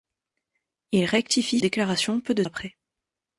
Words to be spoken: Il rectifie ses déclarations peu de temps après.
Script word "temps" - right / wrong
wrong